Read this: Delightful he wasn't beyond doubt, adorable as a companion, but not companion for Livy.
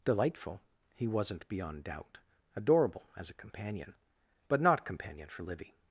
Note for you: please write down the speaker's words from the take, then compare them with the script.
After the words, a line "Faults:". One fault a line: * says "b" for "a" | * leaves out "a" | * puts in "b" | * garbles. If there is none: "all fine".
Delightful he wasn't beyond doubt, adorable as a companion, but not companion for Livy.
Faults:
all fine